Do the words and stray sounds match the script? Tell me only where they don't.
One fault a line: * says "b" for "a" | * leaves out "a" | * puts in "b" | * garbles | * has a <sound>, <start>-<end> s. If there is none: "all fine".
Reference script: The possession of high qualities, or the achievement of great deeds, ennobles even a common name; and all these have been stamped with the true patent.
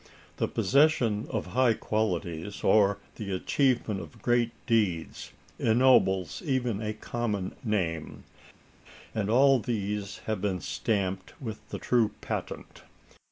all fine